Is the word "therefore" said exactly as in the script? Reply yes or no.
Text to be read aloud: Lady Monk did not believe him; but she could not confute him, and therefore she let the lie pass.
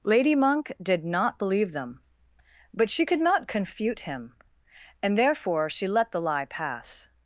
yes